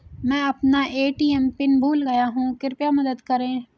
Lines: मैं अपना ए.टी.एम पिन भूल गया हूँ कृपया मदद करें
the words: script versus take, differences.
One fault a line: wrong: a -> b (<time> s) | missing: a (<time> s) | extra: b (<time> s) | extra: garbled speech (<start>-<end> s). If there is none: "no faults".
no faults